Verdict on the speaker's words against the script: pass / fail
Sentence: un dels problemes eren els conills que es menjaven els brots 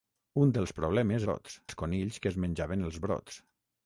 fail